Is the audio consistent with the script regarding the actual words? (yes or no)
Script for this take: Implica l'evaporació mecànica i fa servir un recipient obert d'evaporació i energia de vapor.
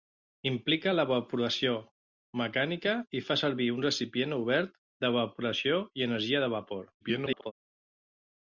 no